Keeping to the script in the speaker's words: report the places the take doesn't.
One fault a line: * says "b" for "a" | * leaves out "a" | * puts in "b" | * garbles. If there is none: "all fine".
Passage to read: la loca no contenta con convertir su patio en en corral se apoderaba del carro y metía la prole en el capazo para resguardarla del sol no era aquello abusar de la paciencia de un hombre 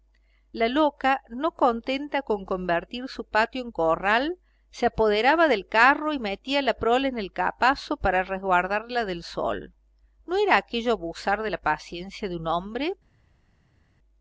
* leaves out "en"